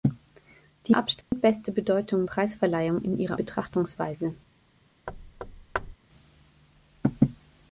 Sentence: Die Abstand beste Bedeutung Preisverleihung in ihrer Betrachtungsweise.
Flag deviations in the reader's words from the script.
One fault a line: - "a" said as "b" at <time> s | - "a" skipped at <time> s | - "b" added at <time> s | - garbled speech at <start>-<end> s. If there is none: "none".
none